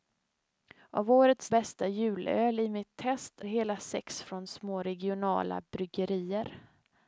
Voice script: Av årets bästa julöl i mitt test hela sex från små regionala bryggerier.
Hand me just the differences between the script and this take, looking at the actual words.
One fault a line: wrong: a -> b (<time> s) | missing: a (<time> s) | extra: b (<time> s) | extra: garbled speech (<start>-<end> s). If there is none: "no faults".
no faults